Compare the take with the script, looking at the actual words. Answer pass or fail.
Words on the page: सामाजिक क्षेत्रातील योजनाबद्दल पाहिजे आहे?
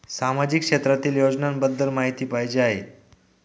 fail